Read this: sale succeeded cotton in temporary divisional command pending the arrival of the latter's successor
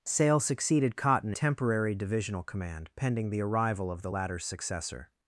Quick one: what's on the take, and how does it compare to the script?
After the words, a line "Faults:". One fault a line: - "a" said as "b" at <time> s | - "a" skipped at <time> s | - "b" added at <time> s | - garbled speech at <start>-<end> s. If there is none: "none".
sale succeeded cotton temporary divisional command pending the arrival of the latter's successor
Faults:
- "in" skipped at 1.3 s